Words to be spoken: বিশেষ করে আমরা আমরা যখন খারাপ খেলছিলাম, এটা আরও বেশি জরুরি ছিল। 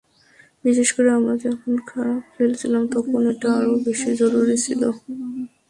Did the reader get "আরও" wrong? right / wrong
right